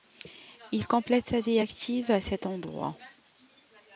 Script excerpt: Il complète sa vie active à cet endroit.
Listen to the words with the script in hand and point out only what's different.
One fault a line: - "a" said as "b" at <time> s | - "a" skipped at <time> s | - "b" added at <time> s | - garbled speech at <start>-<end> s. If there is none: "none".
none